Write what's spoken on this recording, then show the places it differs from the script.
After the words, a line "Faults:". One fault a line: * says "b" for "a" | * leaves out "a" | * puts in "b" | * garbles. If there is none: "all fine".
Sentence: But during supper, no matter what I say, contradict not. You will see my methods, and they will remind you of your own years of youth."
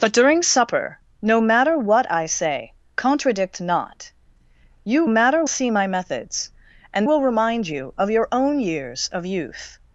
But during supper, no matter what I say, contradict not. You matter see my methods, and will remind you of your own years of youth."
Faults:
* says "matter" for "will"
* leaves out "they"